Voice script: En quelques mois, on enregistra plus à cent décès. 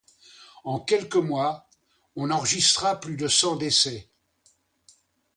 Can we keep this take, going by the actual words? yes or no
no